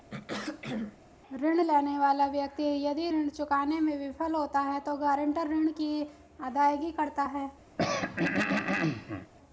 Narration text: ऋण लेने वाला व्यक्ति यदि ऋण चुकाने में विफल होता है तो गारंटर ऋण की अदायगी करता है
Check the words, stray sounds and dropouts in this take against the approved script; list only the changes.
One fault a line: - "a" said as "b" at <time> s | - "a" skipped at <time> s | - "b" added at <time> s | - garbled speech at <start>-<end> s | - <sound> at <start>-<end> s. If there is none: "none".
- throat clearing at 0.1-1.0 s
- throat clearing at 7.8-9.3 s